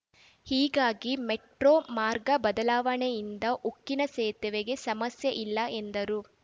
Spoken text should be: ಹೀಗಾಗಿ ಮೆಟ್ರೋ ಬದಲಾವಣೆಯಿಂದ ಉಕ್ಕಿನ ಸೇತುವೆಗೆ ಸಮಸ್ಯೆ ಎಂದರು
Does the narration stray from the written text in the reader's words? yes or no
yes